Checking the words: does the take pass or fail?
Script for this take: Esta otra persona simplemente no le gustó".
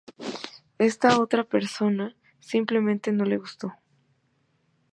pass